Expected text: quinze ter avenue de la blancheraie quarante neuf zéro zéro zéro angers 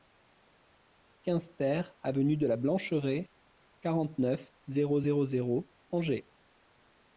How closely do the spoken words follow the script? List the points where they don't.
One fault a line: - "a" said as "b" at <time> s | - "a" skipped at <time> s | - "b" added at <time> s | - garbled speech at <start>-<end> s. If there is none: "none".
none